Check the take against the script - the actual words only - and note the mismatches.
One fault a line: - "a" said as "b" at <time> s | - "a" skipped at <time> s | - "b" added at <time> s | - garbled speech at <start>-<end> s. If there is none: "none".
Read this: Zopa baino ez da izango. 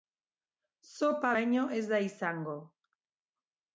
none